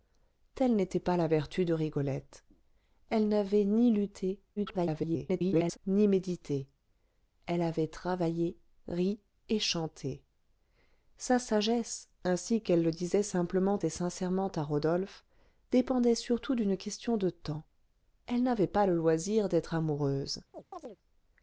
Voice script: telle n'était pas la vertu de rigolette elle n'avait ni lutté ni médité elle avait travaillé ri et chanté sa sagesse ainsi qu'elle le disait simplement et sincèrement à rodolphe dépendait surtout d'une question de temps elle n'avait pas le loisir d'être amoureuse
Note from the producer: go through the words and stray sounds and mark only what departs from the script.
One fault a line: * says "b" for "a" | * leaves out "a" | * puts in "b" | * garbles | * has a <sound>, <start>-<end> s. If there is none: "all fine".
* garbles
* has a chirp, 20.5-21.0 s